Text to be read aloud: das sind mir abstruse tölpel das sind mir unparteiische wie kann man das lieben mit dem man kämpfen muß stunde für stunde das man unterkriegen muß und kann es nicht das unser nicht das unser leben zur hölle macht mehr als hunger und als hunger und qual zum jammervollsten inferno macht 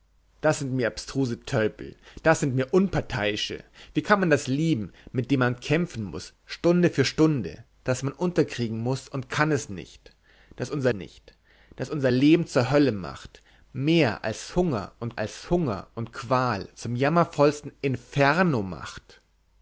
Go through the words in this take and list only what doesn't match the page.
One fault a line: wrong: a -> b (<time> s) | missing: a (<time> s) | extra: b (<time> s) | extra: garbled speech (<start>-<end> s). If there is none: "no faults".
no faults